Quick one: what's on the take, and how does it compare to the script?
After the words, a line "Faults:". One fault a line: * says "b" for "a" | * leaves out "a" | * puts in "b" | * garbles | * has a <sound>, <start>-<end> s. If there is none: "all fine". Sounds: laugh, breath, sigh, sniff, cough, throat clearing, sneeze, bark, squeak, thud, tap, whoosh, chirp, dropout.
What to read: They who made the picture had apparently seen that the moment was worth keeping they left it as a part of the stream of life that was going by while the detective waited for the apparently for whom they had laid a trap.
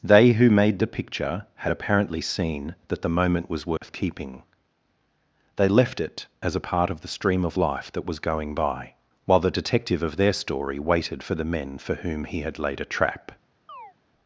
They who made the picture had apparently seen that the moment was worth keeping they left it as a part of the stream of life that was going by while the detective of their story waited for the men for whom he had laid a trap.
Faults:
* has a dropout, 3.8-3.8 s
* puts in "of their story"
* says "men" for "apparently"
* says "he" for "they"
* has a chirp, 13.7-13.9 s